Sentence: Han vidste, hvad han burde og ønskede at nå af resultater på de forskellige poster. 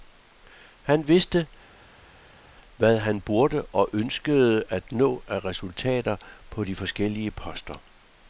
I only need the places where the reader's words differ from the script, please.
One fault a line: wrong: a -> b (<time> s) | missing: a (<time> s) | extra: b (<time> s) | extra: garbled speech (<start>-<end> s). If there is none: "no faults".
no faults